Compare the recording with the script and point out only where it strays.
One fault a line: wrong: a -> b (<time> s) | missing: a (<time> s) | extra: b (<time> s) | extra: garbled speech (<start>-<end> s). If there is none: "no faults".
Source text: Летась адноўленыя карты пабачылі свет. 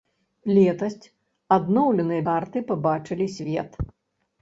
no faults